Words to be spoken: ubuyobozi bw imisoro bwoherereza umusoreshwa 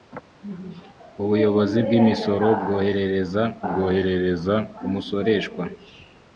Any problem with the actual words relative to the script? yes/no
yes